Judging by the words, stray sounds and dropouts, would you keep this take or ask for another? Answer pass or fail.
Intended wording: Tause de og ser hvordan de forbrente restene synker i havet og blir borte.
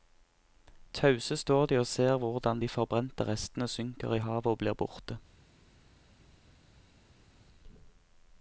fail